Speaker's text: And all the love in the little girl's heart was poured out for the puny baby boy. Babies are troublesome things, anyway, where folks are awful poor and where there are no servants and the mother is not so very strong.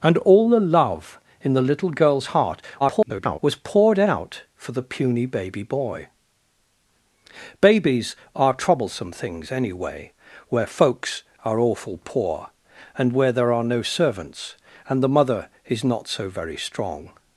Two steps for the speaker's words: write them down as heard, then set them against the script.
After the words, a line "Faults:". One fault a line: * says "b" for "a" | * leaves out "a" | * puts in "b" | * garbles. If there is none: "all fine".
And all the love in the little girl's heart [garbled] was poured out for the puny baby boy. Babies are troublesome things, anyway, where folks are awful poor and where there are no servants and the mother is not so very strong.
Faults:
* garbles